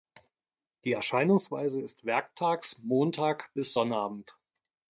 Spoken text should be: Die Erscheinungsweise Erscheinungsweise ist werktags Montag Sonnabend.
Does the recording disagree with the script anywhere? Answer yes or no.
yes